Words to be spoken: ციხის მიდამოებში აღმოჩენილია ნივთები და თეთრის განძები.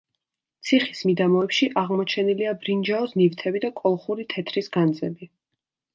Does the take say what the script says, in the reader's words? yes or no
no